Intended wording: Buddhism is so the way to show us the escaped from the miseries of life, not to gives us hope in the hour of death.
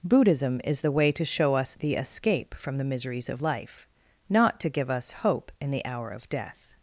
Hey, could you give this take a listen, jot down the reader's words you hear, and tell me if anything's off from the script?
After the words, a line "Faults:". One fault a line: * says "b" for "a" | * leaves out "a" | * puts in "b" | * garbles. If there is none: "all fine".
Buddhism is the way to show us the escape from the miseries of life, not to give us hope in the hour of death.
Faults:
* leaves out "so"
* says "escape" for "escaped"
* says "give" for "gives"